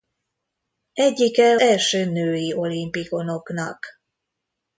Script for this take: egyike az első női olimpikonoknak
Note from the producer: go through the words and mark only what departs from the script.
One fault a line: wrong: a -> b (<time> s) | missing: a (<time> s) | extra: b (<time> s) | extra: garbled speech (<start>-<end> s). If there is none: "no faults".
missing: az (1.6 s)